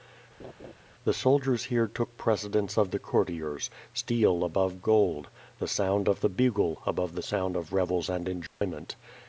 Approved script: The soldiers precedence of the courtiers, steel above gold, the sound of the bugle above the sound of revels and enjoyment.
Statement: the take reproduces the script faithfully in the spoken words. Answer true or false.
false